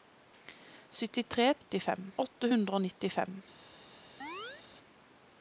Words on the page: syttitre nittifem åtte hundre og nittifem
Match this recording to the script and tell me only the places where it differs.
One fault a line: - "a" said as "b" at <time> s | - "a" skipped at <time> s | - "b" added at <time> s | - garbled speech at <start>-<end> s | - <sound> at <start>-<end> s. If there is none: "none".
- chirp at 4.2-4.6 s